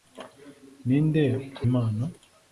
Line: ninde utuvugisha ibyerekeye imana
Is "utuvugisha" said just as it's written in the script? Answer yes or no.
no